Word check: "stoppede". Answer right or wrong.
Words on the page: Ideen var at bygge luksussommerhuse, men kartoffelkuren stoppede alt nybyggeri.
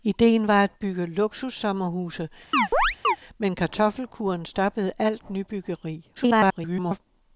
right